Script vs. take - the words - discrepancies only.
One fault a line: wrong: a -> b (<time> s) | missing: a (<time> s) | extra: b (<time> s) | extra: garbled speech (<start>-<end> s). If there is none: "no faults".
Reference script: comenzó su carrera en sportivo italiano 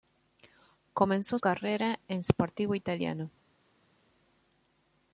missing: su (1.4 s)